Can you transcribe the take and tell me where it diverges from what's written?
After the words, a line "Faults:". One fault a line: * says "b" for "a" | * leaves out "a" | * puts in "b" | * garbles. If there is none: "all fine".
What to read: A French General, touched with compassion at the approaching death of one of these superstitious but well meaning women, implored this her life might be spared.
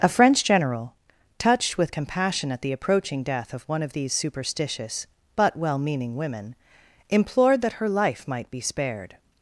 A French General, touched with compassion at the approaching death of one of these superstitious but well meaning women, implored that her life might be spared.
Faults:
* says "that" for "this"